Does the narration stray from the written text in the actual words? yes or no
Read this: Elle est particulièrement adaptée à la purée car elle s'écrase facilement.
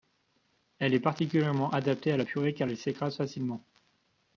no